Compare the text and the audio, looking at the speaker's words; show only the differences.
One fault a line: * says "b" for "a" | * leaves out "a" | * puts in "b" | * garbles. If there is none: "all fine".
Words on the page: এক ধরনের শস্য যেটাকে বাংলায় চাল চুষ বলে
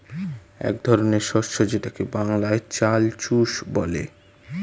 all fine